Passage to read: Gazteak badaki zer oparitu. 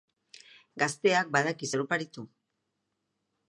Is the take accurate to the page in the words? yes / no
yes